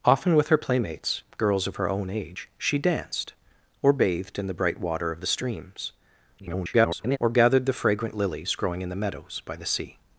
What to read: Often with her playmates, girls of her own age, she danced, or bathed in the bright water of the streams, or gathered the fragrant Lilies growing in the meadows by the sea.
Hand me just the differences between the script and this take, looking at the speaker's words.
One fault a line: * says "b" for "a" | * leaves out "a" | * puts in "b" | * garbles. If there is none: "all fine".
* garbles